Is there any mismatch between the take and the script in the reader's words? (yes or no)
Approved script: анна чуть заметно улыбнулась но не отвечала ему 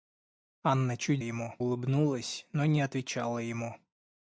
yes